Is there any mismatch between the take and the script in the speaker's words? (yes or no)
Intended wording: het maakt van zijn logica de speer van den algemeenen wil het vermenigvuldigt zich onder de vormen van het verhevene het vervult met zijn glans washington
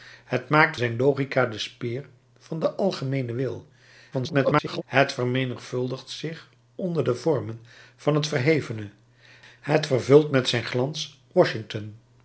yes